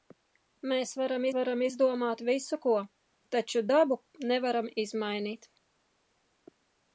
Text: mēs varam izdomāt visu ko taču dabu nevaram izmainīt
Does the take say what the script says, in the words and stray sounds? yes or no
no